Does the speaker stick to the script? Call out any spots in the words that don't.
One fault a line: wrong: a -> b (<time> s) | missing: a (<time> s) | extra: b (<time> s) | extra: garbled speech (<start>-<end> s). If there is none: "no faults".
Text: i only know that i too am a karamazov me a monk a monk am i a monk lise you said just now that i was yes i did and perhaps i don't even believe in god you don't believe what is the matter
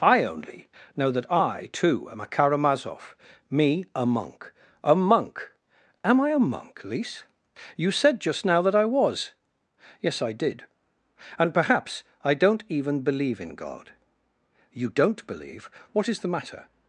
no faults